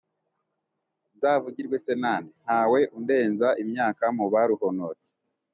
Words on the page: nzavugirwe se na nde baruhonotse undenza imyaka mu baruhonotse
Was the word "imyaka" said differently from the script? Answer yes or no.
no